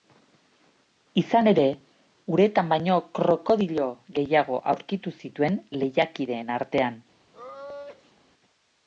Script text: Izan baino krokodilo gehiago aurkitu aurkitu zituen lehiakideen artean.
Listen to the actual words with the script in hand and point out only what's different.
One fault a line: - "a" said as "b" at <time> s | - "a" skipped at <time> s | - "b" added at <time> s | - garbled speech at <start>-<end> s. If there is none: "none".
- "ere uretan" added at 1.5 s
- "aurkitu" skipped at 5.2 s